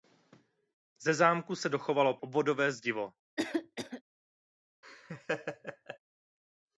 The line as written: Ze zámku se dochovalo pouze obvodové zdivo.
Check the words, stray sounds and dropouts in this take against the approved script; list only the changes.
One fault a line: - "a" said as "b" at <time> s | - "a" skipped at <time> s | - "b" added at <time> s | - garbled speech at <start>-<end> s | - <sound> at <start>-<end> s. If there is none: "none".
- "pouze" skipped at 2.2 s
- cough at 3.4-4.0 s
- laugh at 4.8-6.0 s